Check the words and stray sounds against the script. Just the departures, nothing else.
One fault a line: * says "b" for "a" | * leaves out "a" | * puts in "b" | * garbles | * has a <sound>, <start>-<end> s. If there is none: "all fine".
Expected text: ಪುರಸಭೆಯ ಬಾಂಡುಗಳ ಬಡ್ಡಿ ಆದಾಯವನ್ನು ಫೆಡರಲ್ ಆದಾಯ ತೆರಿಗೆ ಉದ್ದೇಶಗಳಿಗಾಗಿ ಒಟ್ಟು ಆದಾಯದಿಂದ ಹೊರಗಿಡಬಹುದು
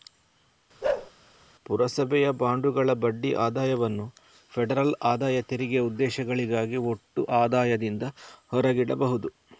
* has a bark, 0.8-1.1 s